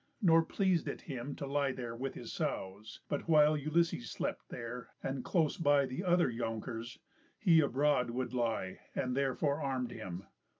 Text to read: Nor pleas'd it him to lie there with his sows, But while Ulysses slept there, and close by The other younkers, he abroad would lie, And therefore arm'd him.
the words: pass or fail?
pass